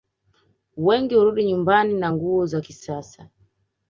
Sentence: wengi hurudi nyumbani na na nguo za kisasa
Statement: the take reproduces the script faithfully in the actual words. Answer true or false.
false